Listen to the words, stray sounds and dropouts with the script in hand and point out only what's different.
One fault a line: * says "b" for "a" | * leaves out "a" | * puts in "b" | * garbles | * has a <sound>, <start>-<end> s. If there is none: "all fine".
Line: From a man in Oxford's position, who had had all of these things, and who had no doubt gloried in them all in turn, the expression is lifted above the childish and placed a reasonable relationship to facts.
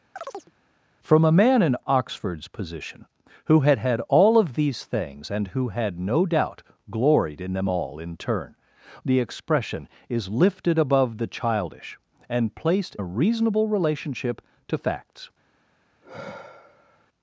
* has a chirp, 0.2-0.5 s
* has a sigh, 16.0-17.1 s